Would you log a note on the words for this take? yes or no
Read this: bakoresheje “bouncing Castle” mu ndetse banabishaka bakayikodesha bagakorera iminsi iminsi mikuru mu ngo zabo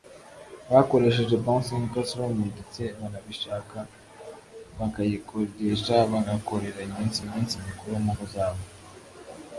no